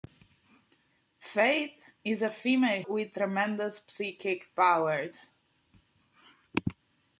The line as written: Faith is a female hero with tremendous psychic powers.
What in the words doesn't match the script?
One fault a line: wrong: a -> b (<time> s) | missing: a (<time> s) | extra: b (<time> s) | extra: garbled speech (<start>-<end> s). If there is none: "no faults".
missing: hero (2.8 s)